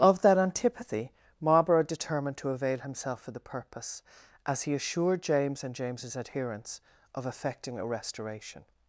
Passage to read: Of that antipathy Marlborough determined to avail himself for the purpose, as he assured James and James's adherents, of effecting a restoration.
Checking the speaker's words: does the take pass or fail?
pass